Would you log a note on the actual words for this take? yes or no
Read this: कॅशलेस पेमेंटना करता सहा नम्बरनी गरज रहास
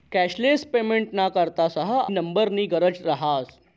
no